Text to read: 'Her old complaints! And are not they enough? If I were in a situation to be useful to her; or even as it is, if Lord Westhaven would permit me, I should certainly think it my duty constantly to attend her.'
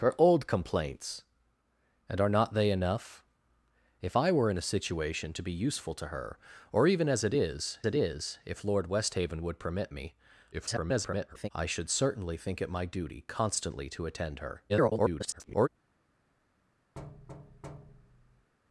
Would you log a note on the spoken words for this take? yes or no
yes